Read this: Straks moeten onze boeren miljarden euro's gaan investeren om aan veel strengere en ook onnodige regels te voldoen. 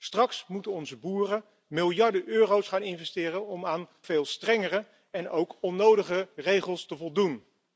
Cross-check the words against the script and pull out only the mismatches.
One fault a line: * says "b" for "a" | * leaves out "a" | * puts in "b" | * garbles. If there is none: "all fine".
all fine